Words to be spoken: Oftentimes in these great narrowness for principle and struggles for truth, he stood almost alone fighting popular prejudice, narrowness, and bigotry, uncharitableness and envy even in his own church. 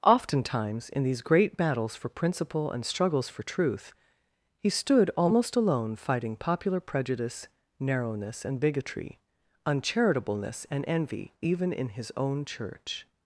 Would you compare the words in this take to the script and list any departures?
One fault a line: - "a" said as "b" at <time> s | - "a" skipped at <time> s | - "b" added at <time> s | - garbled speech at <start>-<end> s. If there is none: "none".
- "narrowness" said as "battles" at 1.6 s